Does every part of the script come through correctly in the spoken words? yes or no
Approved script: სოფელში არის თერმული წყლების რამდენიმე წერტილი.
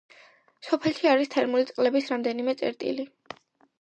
yes